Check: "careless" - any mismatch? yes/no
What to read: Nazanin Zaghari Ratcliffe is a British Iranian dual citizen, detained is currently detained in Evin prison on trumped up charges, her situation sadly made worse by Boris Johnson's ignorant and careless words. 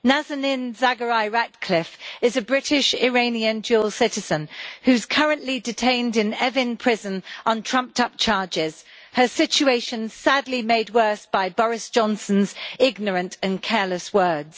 no